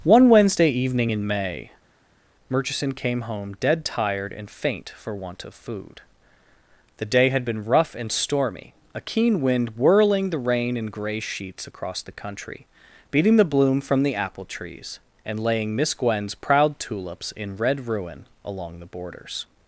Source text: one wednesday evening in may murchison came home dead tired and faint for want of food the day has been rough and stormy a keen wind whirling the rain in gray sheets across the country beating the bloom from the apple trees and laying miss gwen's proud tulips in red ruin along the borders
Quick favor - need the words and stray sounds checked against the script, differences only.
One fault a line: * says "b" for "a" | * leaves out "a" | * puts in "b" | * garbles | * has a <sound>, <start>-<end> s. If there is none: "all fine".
* says "had" for "has"